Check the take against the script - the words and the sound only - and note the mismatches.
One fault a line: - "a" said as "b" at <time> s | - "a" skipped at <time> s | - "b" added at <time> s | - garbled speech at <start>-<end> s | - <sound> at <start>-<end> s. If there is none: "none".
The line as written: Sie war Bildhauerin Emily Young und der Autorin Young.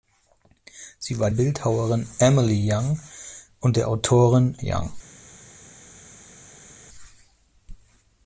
none